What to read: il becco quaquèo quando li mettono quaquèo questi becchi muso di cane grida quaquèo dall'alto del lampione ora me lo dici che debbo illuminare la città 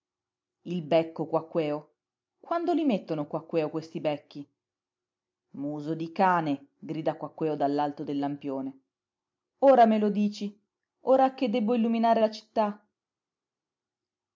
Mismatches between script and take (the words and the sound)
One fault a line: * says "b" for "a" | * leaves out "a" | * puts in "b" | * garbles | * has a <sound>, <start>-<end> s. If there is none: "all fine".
* puts in "ora"